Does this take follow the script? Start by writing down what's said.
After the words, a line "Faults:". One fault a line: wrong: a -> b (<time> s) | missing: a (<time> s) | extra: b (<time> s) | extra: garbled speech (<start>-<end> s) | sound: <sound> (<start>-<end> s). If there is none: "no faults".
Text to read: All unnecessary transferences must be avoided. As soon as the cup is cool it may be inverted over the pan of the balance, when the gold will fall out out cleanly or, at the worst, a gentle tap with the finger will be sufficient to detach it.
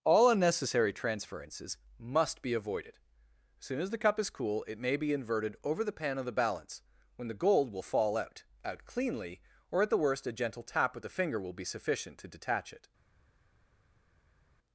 All unnecessary transferences must be avoided. As soon as the cup is cool it may be inverted over the pan of the balance, when the gold will fall out out cleanly or, at the worst, a gentle tap with the finger will be sufficient to detach it.
Faults:
no faults